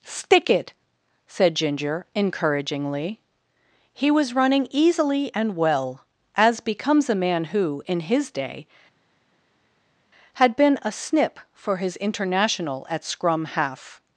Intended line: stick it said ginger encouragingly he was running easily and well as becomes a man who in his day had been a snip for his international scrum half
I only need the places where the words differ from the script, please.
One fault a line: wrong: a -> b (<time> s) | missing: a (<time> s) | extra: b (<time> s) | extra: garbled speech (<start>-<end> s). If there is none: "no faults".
extra: at (12.9 s)